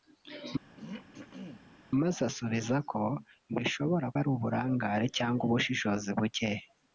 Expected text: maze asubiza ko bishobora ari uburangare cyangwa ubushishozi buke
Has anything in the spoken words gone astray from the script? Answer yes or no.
no